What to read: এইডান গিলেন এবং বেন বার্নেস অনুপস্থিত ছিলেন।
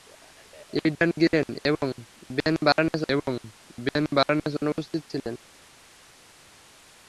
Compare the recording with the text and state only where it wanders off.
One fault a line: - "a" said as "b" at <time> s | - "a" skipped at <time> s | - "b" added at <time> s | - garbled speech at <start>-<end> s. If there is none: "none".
- "এবং বেন বার্নেস" added at 3.1 s